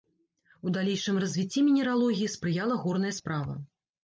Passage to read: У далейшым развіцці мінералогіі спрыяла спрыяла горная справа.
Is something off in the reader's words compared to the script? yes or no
yes